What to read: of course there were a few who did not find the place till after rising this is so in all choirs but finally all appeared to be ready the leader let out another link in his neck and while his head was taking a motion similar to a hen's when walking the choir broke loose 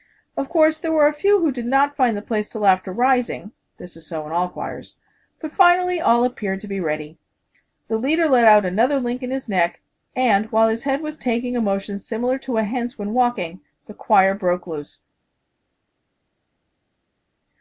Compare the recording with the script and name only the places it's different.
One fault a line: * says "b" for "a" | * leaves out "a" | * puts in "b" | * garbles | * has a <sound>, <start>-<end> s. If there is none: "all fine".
all fine